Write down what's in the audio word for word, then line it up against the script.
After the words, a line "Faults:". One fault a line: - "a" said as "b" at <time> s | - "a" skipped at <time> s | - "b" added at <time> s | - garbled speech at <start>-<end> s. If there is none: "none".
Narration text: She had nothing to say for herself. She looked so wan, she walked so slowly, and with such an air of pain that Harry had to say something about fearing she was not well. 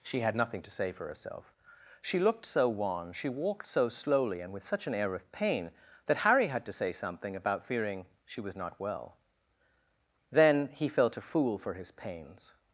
She had nothing to say for herself. She looked so wan, she walked so slowly, and with such an air of pain that Harry had to say something about fearing she was not well. Then he felt a fool for his pains
Faults:
- "Then he felt a fool for his pains" added at 10.3 s